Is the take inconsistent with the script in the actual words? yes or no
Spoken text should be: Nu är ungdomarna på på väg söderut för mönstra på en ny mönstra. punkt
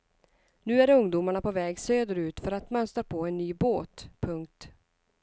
yes